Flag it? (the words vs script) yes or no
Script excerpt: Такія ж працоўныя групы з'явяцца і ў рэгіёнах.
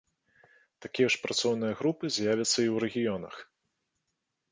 no